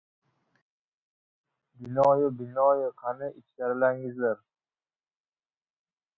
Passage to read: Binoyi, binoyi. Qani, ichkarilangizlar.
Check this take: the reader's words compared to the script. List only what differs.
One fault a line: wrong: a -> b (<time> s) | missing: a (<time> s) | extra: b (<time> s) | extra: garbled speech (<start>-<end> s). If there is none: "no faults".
no faults